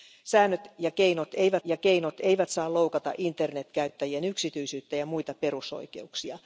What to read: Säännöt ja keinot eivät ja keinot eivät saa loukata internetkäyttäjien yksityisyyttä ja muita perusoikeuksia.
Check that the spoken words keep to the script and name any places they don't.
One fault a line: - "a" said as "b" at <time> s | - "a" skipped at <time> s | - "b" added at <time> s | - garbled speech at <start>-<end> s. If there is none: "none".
none